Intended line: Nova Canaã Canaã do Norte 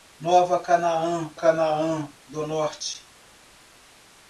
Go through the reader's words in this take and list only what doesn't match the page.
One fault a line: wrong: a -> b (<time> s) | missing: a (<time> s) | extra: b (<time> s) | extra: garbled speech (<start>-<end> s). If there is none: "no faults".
no faults